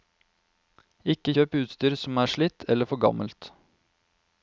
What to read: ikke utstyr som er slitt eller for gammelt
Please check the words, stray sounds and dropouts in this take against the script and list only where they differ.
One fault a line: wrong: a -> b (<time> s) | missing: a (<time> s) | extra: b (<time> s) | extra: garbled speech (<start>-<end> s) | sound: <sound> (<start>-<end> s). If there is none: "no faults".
extra: kjøp (1.3 s)